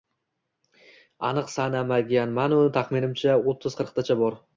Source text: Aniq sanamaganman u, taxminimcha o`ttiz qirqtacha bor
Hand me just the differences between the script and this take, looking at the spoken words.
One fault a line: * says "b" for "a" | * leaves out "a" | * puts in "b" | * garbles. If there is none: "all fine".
all fine